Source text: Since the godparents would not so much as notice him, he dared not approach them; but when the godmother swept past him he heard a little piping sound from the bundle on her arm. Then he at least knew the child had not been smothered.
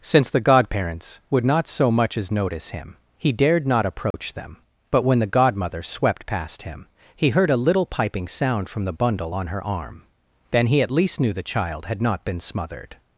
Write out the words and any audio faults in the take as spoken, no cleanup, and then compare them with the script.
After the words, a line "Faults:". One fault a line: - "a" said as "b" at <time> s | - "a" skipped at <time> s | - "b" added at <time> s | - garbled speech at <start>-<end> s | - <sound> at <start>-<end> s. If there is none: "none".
Since the godparents would not so much as notice him, he dared not approach them; but when the godmother swept past him he heard a little piping sound from the bundle on her arm. Then he at least knew the child had not been smothered.
Faults:
- dropout at 4.1-4.1 s